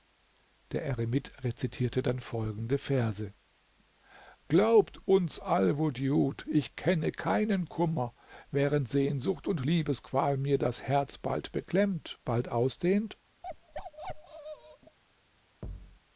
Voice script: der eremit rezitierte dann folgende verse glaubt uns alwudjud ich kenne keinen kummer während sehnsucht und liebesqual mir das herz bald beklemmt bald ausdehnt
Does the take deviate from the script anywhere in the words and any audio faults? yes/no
yes